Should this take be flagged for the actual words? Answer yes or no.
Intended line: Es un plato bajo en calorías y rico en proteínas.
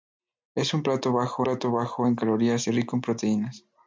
yes